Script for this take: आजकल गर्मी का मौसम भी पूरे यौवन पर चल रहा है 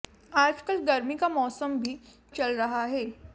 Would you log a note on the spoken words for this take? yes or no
yes